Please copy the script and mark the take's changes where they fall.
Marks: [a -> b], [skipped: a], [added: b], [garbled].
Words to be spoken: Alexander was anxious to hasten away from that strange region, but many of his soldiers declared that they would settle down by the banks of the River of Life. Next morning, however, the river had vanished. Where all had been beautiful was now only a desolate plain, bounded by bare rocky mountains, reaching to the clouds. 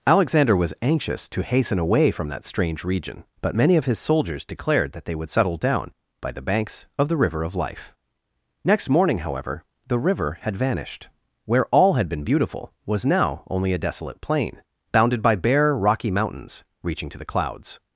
Alexander was anxious to hasten away from that strange region, but many of his soldiers declared that they would settle down by the banks of the River of Life. Next morning, however, the river had vanished. Where all had been beautiful was now only a desolate plain, bounded by bare rocky mountains, reaching to the clouds.